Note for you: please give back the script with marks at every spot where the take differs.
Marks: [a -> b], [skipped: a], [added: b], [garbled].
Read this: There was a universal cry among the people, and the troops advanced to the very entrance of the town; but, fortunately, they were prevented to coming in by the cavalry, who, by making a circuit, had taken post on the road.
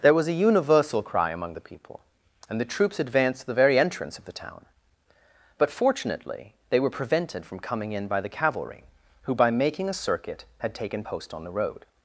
There was a universal cry among the people, and the troops advanced to the very entrance of the town; but, fortunately, they were prevented [to -> from] coming in by the cavalry, who, by making a circuit, had taken post on the road.